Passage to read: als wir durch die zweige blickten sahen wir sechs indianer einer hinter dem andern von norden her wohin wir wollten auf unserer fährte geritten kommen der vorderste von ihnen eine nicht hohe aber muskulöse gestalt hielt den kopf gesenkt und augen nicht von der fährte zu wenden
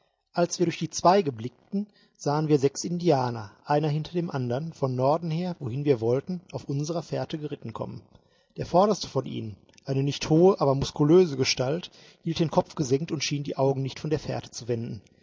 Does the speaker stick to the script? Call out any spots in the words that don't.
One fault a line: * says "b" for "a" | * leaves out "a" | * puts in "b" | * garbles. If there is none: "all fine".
* puts in "schien die"